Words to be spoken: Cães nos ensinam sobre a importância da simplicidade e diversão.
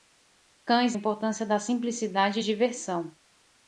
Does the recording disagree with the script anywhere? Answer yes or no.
yes